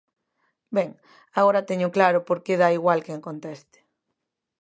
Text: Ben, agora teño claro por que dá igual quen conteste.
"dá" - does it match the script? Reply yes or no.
yes